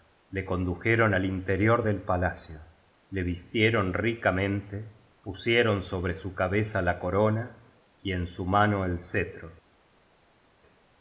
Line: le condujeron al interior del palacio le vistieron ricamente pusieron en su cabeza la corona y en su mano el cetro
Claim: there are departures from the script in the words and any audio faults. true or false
true